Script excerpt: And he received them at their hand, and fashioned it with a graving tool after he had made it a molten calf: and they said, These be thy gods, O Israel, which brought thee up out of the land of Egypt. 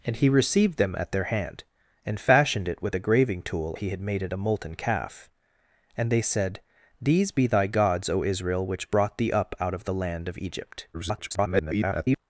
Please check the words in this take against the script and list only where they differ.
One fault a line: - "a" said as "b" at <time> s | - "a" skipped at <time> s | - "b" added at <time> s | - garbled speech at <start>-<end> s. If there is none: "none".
- "after" skipped at 3.8 s
- garbled speech at 10.9-12.2 s